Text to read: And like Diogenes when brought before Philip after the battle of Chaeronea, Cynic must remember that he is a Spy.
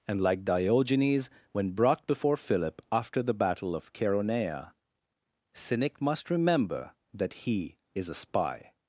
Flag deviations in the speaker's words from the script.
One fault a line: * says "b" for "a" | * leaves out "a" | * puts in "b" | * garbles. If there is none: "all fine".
all fine